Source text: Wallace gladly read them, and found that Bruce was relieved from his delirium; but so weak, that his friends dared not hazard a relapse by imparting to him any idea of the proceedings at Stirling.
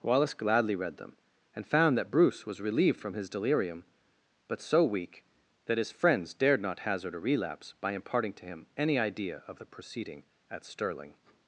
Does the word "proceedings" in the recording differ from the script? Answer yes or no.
yes